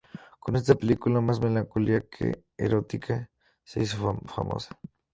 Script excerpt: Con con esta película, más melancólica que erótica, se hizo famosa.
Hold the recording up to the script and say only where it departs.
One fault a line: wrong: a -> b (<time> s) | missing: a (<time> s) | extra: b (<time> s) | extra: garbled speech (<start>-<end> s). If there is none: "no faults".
missing: con (0.6 s)